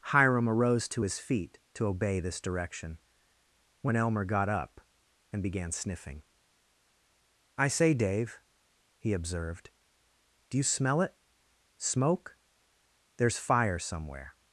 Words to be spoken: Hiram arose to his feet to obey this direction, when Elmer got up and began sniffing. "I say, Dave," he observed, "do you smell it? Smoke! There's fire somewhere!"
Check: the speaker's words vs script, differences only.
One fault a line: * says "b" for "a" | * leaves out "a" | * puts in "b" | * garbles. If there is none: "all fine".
all fine